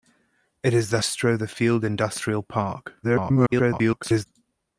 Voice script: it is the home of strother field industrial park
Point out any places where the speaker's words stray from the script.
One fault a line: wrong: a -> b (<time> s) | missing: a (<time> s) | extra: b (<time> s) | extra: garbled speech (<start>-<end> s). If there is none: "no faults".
missing: home of (1.0 s)
extra: garbled speech (3.0-4.3 s)